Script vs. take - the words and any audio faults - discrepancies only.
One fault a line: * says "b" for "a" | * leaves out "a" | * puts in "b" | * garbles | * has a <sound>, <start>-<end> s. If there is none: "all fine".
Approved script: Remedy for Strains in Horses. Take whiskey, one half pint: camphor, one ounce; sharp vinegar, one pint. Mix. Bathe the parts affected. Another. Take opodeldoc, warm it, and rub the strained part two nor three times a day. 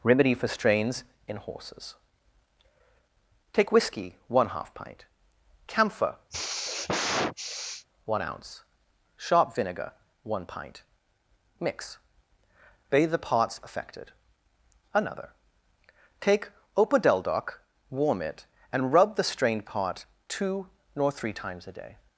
* has a sigh, 6.3-7.9 s